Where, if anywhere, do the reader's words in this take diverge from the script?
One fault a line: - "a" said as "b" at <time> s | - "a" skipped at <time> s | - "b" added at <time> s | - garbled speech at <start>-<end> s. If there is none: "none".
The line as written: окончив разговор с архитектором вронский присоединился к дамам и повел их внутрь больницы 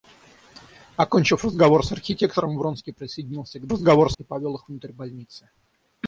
- "дамам" said as "разговор" at 3.7 s